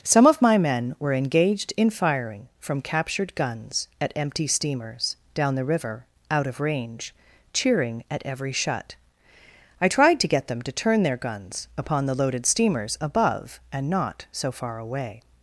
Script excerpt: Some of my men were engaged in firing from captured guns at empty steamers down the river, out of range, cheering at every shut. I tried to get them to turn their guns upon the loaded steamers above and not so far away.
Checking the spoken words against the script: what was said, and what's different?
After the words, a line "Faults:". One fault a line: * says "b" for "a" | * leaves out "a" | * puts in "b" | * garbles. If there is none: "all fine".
Some of my men were engaged in firing from captured guns at empty steamers down the river, out of range, cheering at every shut. I tried to get them to turn their guns upon the loaded steamers above and not so far away.
Faults:
all fine